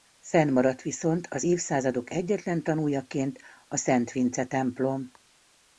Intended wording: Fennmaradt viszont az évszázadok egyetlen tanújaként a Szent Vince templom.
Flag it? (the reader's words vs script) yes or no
no